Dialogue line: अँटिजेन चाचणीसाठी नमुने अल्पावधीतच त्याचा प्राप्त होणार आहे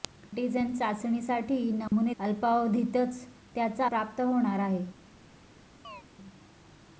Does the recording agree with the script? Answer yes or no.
yes